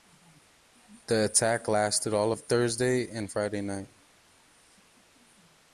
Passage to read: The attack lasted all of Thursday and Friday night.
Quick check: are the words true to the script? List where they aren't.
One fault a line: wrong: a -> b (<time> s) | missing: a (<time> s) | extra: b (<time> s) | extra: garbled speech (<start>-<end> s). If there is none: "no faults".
no faults